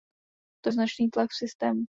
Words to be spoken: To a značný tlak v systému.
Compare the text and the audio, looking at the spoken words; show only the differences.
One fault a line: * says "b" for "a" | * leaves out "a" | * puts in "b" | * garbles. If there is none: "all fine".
all fine